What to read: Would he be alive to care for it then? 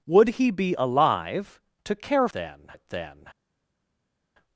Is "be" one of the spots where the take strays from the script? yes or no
no